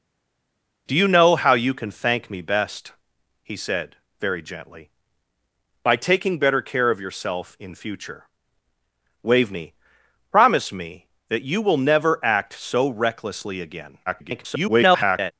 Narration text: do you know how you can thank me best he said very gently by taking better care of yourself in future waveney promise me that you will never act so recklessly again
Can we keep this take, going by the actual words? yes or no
no